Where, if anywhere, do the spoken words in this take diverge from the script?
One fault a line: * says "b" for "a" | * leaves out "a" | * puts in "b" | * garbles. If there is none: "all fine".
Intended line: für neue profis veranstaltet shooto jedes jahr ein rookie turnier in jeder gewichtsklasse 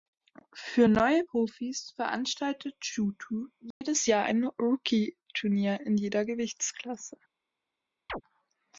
all fine